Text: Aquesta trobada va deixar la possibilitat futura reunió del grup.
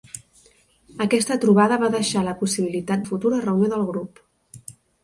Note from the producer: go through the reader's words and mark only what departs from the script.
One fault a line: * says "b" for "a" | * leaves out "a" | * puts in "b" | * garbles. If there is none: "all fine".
all fine